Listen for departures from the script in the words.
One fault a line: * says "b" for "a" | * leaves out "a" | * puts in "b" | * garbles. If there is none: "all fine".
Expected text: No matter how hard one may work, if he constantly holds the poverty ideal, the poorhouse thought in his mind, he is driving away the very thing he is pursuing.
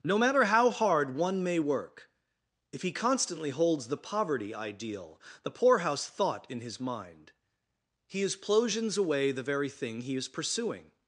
* says "plosions" for "driving"